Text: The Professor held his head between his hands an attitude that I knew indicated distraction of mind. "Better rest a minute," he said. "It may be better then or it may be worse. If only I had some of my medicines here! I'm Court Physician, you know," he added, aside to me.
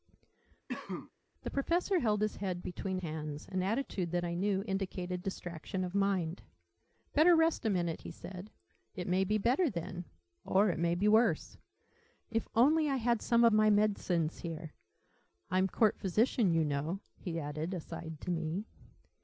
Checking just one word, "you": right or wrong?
right